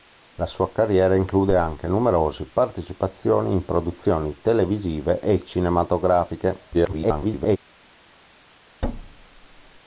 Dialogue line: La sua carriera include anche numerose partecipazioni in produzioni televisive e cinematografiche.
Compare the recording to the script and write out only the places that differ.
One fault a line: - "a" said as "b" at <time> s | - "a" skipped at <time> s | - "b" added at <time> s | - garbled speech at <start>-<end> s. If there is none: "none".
- garbled speech at 6.7-7.6 s